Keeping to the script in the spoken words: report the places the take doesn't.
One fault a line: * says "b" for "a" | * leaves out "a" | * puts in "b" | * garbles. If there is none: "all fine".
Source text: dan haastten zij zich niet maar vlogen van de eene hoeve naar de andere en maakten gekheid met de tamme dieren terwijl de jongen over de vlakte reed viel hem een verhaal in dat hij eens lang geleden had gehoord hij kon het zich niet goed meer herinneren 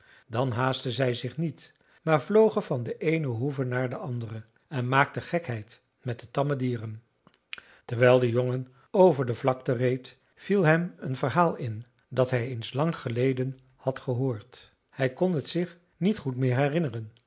all fine